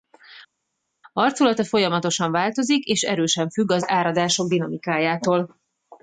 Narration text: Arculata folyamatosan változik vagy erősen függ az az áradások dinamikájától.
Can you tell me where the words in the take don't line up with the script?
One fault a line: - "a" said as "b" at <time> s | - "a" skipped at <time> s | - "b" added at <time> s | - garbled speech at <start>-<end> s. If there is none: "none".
- "vagy" said as "és" at 2.8 s
- "az" skipped at 3.9 s